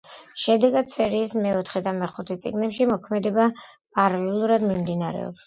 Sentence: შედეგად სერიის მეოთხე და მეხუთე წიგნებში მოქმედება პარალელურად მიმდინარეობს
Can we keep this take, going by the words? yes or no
yes